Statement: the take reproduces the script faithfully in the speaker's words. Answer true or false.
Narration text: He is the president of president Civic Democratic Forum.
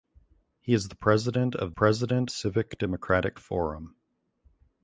true